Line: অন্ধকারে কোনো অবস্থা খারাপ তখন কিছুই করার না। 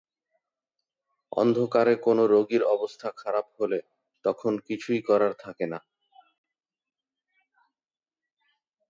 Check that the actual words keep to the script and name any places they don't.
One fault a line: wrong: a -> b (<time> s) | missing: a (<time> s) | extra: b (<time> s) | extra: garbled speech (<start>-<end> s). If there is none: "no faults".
extra: রোগীর (2.3 s)
extra: হলে (3.6 s)
extra: থাকে (5.4 s)